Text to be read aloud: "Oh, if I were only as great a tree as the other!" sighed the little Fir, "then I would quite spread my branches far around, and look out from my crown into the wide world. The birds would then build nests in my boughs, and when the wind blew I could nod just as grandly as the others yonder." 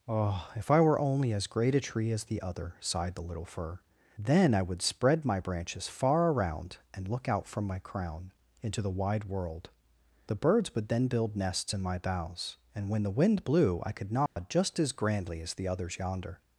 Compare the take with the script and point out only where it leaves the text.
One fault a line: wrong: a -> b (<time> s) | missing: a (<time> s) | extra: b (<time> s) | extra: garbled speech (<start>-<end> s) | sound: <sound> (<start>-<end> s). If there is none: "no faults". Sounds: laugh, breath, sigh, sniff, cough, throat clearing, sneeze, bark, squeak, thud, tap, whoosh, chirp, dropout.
missing: quite (4.8 s)
sound: dropout (14.3-14.4 s)